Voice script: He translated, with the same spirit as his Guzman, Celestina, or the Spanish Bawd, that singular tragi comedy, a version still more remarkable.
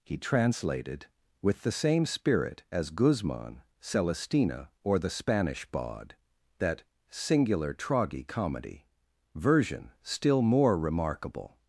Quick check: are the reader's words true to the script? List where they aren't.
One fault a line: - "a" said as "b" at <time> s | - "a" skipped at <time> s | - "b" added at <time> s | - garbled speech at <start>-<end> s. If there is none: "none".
- "his" skipped at 2.9 s
- "a" skipped at 8.9 s